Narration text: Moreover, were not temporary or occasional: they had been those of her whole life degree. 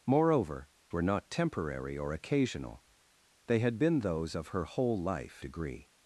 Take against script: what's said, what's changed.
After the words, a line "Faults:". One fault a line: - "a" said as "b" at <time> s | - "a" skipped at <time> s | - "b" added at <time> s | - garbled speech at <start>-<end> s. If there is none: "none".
Moreover, were not temporary or occasional: they had been those of her whole life degree.
Faults:
none